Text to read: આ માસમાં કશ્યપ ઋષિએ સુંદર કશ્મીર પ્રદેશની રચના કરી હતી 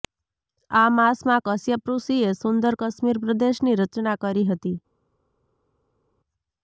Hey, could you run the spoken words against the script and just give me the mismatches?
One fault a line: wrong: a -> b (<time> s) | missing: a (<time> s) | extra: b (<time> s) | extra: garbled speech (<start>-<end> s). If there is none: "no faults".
no faults